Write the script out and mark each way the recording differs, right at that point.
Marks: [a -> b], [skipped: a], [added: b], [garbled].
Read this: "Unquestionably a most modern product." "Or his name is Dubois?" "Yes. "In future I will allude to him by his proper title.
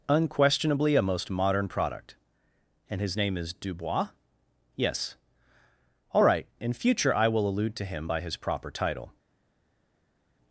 "Unquestionably a most modern product." ["Or -> And] his name is Dubois?" "Yes. [added: All right] "In future I will allude to him by his proper title.